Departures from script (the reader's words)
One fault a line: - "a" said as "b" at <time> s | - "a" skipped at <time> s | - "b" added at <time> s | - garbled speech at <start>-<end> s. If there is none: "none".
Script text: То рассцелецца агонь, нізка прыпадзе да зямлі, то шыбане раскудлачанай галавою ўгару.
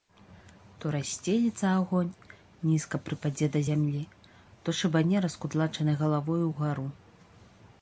none